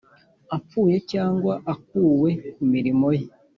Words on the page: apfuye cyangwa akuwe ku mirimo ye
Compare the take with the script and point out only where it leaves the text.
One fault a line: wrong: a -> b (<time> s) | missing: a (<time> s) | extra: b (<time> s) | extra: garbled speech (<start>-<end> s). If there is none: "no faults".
no faults